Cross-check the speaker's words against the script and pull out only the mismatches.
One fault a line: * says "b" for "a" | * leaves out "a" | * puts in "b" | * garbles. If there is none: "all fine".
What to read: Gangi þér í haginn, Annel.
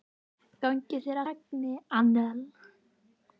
all fine